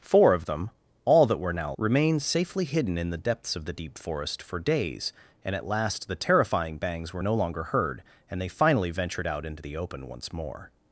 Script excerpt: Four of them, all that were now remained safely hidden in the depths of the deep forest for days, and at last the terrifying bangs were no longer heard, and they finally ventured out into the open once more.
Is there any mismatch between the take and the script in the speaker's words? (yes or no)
no